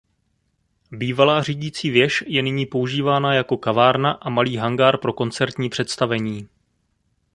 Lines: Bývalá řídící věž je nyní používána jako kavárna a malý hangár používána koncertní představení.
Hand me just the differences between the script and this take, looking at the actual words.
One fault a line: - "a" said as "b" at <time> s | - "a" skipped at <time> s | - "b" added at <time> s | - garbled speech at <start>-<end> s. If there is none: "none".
- "používána" said as "pro" at 5.0 s